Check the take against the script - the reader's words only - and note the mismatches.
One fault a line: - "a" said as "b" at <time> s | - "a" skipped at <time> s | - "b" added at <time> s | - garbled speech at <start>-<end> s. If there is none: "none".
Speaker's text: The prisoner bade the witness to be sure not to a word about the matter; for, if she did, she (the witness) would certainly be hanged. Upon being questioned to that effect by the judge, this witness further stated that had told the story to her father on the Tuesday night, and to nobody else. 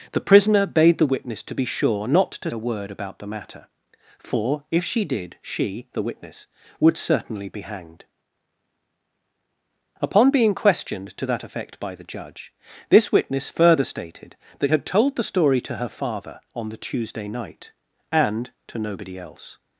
none